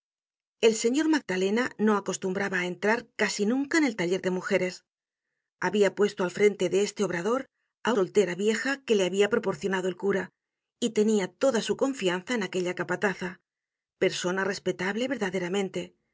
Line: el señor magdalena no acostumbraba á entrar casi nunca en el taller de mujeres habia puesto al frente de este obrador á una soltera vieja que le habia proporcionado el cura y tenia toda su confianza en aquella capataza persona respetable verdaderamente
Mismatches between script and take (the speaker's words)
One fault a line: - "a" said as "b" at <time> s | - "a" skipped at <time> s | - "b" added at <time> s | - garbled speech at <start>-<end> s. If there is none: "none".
- "una" skipped at 7.9 s